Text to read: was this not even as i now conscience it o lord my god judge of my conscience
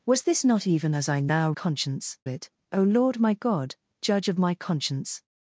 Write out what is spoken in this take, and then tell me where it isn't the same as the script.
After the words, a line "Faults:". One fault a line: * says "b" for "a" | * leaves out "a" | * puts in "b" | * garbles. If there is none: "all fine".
was this not even as i now conscience it o lord my god judge of my conscience
Faults:
all fine